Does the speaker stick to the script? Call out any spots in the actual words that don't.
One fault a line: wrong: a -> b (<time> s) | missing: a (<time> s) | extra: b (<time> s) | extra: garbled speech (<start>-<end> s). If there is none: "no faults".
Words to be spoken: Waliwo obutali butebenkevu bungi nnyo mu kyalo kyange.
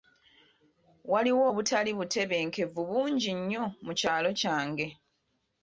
no faults